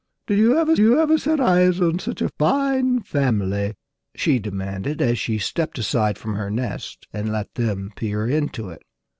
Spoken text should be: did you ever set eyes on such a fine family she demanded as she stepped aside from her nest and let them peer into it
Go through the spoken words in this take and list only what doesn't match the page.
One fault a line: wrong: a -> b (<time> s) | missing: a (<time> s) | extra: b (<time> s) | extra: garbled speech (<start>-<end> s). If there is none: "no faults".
extra: you ever (0.8 s)